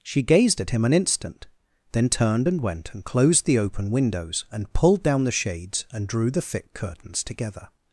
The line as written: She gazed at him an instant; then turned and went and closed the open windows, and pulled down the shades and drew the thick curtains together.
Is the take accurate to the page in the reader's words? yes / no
yes